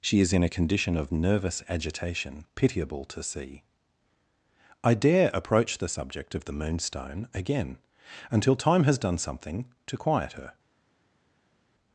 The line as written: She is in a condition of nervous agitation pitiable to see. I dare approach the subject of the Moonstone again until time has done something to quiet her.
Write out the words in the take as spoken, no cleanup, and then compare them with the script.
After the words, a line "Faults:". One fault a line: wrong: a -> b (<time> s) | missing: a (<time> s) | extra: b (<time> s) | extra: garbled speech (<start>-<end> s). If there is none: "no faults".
She is in a condition of nervous agitation pitiable to see. I dare approach the subject of the Moonstone again until time has done something to quiet her.
Faults:
no faults